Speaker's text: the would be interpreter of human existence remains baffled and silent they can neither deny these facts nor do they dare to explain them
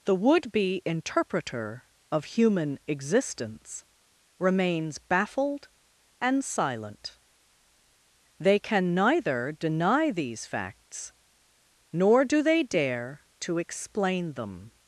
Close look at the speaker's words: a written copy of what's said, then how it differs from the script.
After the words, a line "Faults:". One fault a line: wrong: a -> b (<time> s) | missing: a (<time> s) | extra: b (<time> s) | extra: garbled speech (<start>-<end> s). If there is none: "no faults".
the would be interpreter of human existence remains baffled and silent they can neither deny these facts nor do they dare to explain them
Faults:
no faults